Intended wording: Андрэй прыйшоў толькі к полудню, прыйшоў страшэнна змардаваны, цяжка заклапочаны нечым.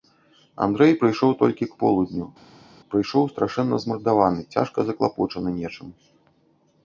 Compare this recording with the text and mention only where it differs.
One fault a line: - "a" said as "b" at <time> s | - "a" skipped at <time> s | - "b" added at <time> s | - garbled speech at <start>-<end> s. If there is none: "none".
none